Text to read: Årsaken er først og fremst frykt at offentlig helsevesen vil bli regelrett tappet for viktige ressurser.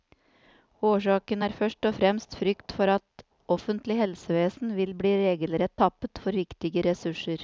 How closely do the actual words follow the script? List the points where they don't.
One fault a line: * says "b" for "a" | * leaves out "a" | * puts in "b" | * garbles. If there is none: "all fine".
* puts in "for"